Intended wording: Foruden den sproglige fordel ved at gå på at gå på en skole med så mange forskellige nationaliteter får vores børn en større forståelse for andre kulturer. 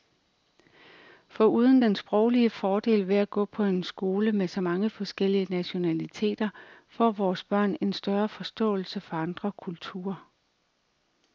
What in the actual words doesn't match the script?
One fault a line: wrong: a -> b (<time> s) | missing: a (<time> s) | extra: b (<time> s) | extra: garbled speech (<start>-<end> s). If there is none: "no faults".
missing: at gå på (3.6 s)